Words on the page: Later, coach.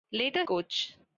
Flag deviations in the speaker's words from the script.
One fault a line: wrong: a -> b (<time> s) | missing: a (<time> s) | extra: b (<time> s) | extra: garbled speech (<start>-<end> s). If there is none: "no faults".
no faults